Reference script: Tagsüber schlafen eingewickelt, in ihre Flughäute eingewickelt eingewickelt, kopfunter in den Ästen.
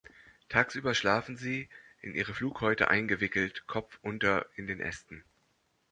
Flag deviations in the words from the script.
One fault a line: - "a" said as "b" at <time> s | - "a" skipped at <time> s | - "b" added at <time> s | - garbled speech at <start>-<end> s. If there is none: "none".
- "eingewickelt" said as "sie" at 1.4 s
- "eingewickelt" skipped at 3.7 s